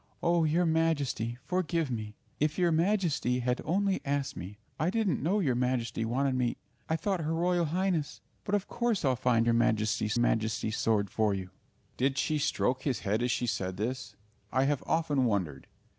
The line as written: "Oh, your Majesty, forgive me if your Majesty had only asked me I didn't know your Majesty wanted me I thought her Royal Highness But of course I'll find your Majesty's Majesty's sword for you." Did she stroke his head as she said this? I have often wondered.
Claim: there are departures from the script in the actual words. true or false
false